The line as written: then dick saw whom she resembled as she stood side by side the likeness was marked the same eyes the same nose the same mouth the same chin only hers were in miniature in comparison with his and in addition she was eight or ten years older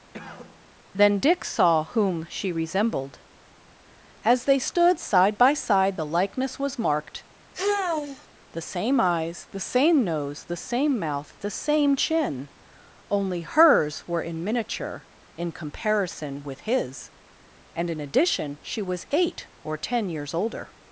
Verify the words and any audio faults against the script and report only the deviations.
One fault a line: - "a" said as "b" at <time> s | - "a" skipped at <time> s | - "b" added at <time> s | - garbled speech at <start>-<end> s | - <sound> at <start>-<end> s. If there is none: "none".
- cough at 0.1-0.7 s
- "she" said as "they" at 4.5 s
- sigh at 7.5-8.3 s